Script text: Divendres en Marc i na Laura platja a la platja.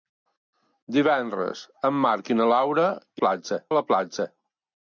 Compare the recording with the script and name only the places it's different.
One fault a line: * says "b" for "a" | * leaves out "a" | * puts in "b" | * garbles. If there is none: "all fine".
all fine